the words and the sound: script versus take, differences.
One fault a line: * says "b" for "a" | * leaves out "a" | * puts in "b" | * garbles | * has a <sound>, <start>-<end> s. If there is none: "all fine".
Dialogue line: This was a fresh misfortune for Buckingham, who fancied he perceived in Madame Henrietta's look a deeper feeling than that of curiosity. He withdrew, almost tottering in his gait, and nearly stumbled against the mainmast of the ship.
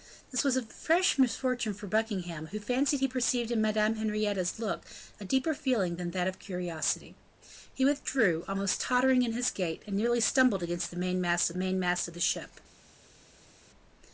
* puts in "mainmast"